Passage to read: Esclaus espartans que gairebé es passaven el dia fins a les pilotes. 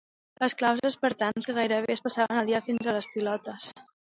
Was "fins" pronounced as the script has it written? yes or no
yes